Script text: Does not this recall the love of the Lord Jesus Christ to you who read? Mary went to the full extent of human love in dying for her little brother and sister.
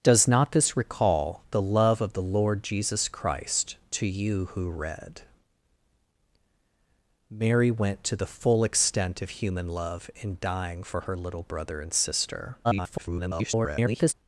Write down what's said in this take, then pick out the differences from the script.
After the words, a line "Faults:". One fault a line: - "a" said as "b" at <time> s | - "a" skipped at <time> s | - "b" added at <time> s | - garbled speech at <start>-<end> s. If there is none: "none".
Does not this recall the love of the Lord Jesus Christ to you who read? Mary went to the full extent of human love in dying for her little brother and sister. [garbled]
Faults:
- garbled speech at 12.6-14.1 s